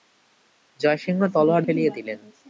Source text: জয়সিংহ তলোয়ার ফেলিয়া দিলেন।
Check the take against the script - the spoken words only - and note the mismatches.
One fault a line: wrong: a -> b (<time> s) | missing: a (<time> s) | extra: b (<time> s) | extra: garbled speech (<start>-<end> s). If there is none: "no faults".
no faults